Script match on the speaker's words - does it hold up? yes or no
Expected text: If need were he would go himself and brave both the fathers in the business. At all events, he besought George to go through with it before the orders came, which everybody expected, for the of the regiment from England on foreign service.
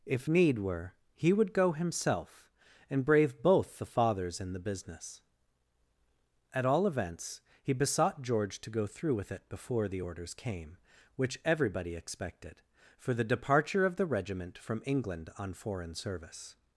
no